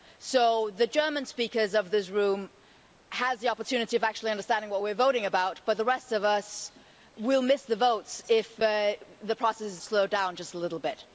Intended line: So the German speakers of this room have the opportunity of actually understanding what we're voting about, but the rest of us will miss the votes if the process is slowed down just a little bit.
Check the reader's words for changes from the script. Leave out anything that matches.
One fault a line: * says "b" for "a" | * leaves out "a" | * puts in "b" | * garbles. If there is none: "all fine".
all fine